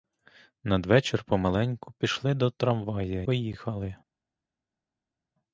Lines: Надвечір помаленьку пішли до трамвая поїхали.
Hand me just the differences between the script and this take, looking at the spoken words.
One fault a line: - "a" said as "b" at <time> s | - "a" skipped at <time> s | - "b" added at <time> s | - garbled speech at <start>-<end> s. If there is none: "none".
none